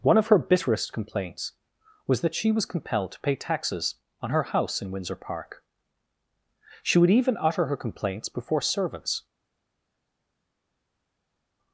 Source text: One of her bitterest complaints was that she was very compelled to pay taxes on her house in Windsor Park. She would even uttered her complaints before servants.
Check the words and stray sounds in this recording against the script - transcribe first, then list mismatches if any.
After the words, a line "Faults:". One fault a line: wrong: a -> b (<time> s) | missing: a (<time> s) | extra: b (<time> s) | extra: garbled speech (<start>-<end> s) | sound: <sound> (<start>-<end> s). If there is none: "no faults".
One of her bitterest complaints was that she was compelled to pay taxes on her house in Windsor Park. She would even utter her complaints before servants.
Faults:
missing: very (2.6 s)
wrong: uttered -> utter (7.4 s)